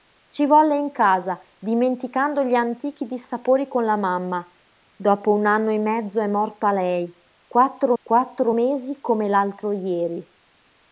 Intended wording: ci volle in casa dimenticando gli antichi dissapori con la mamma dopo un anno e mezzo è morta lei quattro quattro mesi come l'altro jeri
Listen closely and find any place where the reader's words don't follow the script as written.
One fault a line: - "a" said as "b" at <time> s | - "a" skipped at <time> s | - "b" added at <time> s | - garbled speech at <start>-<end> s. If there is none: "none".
none